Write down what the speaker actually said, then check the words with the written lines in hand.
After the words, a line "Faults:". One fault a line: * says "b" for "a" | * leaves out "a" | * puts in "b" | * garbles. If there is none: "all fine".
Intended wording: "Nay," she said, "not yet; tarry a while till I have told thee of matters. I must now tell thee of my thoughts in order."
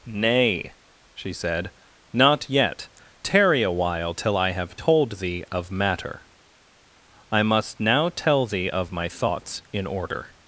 "Nay," she said, "not yet; tarry a while till I have told thee of matter. I must now tell thee of my thoughts in order."
Faults:
* says "matter" for "matters"